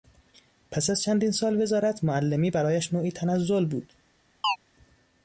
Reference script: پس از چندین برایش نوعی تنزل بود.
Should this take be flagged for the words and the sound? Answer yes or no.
yes